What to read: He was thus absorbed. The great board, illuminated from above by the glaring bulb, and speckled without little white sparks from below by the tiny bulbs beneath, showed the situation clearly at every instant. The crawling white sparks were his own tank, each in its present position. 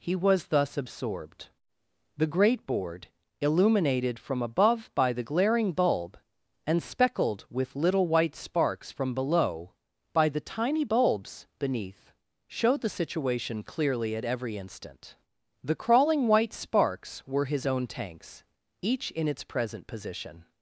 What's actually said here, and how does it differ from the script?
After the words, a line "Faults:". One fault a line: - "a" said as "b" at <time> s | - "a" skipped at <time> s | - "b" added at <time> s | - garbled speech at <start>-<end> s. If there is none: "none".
He was thus absorbed. The great board, illuminated from above by the glaring bulb, and speckled with little white sparks from below by the tiny bulbs beneath, showed the situation clearly at every instant. The crawling white sparks were his own tanks, each in its present position.
Faults:
- "without" said as "with" at 7.5 s
- "tank" said as "tanks" at 17.9 s